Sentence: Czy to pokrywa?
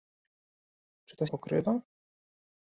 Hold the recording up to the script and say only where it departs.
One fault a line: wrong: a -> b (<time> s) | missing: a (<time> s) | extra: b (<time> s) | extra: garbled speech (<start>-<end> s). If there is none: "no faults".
no faults